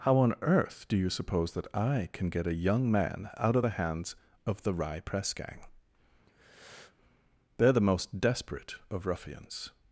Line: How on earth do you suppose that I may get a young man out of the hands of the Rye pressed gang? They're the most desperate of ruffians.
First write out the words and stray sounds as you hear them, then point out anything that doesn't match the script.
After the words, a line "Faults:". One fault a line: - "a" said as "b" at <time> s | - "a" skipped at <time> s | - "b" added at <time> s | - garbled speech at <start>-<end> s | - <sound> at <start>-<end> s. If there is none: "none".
How on earth do you suppose that I can get a young man out of the hands of the Rye press gang? They're the most desperate of ruffians.
Faults:
- "may" said as "can" at 2.1 s
- "pressed" said as "press" at 5.0 s
- breath at 6.3-7.0 s